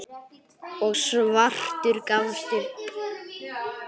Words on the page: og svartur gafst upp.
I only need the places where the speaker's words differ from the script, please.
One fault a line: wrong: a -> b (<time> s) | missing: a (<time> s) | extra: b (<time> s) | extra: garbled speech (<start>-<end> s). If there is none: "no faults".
no faults